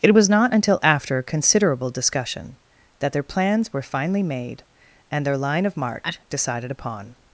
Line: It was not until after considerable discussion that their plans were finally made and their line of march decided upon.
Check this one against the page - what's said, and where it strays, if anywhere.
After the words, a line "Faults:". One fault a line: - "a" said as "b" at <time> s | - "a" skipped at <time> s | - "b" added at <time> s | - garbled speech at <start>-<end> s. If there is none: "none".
It was not until after considerable discussion that their plans were finally made and their line of march decided upon.
Faults:
none